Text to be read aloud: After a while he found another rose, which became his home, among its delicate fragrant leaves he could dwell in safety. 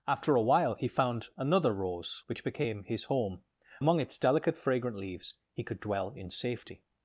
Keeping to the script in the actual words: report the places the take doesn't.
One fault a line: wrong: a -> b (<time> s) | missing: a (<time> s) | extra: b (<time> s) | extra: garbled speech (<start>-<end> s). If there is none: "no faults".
no faults